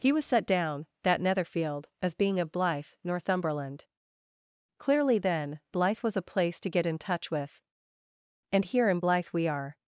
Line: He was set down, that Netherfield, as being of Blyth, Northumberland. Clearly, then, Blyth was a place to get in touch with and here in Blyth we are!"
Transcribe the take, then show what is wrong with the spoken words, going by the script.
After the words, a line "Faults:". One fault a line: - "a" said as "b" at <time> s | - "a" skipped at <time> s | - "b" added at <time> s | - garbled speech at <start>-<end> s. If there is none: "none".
He was set down, that Netherfield, as being of Blyth, Northumberland. Clearly, then, Blyth was a place to get in touch with and here in Blyth we are!"
Faults:
none